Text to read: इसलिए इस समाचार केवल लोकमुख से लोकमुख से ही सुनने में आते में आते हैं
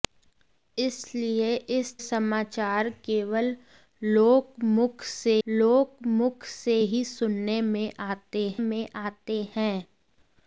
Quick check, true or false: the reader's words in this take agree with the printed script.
true